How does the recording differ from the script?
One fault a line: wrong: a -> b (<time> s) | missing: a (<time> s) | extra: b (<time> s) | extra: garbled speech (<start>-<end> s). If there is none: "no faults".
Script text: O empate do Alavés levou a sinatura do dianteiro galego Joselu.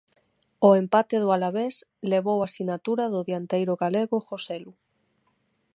no faults